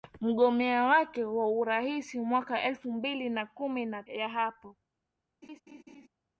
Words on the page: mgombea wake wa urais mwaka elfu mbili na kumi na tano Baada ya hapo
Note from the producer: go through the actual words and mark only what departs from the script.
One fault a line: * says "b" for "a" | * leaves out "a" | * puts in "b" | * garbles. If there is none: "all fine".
* leaves out "tano Baada"